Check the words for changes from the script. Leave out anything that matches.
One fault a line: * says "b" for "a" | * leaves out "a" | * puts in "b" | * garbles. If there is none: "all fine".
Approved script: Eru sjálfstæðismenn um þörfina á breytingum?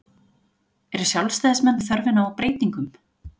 all fine